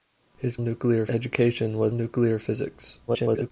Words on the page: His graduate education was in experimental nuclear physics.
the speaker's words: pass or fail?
fail